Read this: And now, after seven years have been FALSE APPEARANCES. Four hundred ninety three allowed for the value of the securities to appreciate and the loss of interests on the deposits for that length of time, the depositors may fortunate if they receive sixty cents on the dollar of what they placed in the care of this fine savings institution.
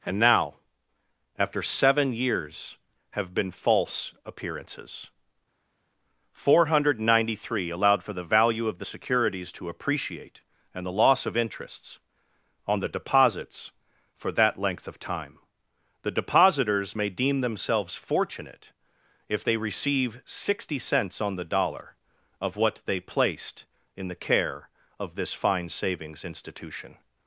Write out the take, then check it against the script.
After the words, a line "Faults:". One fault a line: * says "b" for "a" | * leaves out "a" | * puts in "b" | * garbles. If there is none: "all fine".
And now, after seven years have been FALSE APPEARANCES. Four hundred ninety three allowed for the value of the securities to appreciate and the loss of interests on the deposits for that length of time, the depositors may deem themselves fortunate if they receive sixty cents on the dollar of what they placed in the care of this fine savings institution.
Faults:
* puts in "deem themselves"